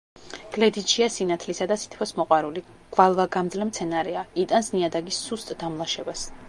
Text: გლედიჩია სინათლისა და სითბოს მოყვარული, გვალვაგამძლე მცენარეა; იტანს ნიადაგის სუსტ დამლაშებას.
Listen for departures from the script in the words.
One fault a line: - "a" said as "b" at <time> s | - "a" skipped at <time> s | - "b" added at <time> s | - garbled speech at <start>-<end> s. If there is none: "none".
none